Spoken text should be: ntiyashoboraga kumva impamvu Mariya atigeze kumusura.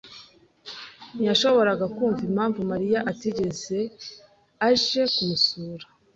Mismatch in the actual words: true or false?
true